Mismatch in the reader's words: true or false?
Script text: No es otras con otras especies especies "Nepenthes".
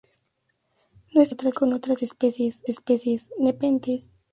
false